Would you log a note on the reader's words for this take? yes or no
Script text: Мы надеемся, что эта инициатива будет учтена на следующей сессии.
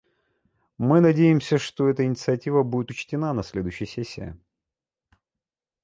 no